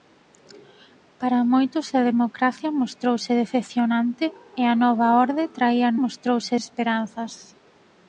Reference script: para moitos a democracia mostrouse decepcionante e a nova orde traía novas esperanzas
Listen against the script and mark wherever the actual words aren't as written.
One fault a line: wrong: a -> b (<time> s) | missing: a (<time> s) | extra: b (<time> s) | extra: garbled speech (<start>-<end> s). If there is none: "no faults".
wrong: novas -> mostrouse (6.0 s)